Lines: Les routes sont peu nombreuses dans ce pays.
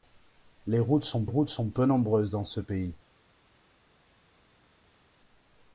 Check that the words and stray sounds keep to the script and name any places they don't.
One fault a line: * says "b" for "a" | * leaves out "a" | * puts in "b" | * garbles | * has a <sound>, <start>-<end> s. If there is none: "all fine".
* puts in "routes sont"